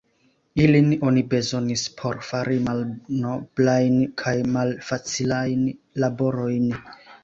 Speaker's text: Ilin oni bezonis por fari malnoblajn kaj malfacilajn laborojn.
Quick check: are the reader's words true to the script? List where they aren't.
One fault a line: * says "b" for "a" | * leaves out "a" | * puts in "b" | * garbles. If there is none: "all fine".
all fine